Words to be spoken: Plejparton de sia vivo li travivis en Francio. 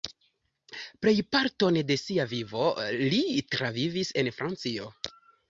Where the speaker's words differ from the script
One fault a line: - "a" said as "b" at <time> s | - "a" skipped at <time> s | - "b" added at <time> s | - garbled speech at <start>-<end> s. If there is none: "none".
none